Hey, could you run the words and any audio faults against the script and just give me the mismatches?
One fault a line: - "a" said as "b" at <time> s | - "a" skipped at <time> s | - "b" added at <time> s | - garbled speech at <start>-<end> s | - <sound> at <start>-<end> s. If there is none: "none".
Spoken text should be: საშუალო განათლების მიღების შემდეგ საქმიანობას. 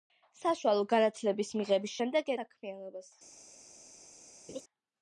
- laugh at 4.5-4.6 s